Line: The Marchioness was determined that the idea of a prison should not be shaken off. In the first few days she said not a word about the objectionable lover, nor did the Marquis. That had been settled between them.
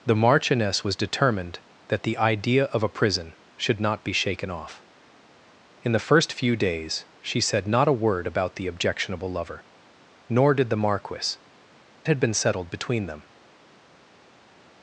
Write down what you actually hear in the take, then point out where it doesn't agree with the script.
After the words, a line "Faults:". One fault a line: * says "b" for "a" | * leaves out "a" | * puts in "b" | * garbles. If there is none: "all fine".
The Marchioness was determined that the idea of a prison should not be shaken off. In the first few days she said not a word about the objectionable lover, nor did the Marquis. Had been settled between them.
Faults:
* leaves out "That"